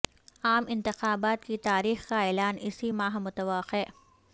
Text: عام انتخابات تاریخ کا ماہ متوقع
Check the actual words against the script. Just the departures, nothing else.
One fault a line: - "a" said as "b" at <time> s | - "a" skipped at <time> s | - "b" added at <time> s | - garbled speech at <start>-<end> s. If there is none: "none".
- "کی" added at 1.4 s
- "اعلان اسی" added at 2.3 s